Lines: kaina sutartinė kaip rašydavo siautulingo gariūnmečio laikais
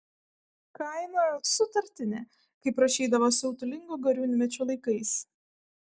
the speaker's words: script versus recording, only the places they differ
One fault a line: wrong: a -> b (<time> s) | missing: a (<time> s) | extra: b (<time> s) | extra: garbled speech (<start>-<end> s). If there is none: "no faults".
no faults